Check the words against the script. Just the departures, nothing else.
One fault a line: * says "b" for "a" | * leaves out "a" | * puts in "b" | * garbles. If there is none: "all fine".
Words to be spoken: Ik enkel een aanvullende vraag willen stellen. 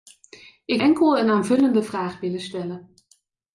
all fine